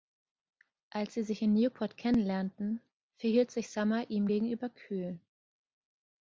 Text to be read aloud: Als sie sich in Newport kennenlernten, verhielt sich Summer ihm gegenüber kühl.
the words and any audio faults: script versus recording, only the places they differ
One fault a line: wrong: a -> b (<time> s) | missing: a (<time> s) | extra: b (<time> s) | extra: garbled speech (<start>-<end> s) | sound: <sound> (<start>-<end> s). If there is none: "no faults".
no faults